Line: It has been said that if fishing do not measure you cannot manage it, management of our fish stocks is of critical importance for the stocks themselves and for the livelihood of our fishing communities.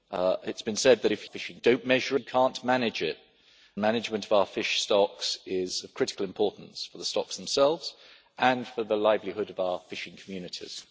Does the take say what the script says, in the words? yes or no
yes